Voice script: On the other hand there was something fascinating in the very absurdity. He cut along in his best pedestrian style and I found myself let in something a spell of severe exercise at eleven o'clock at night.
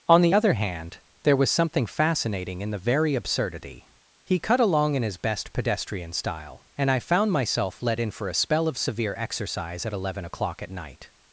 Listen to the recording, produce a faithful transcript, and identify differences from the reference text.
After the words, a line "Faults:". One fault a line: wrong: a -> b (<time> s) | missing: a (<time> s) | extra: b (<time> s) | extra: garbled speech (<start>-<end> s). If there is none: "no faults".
On the other hand there was something fascinating in the very absurdity. He cut along in his best pedestrian style and I found myself let in for a spell of severe exercise at eleven o'clock at night.
Faults:
wrong: something -> for (8.1 s)